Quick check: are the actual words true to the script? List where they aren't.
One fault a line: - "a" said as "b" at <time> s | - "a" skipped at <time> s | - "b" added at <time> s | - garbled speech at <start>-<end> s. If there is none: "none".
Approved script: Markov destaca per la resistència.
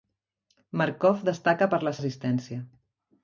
none